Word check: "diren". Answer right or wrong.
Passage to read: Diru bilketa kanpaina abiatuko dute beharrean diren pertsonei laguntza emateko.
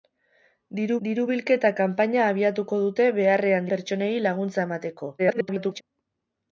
wrong